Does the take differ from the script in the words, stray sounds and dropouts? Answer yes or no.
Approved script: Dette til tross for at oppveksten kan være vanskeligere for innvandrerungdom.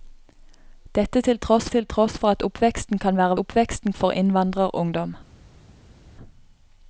yes